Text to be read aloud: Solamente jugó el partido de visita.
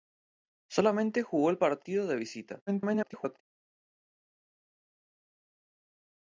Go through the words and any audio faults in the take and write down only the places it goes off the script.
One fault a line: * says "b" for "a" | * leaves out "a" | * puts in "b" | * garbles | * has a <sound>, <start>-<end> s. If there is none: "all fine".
* garbles